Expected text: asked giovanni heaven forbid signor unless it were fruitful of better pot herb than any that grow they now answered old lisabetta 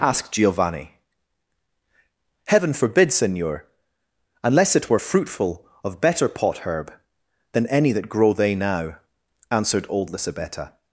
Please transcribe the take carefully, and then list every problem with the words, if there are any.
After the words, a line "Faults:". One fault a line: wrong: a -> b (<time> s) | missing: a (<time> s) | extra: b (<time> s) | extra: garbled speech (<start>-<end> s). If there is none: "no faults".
asked giovanni heaven forbid signor unless it were fruitful of better pot herb than any that grow they now answered old lisabetta
Faults:
no faults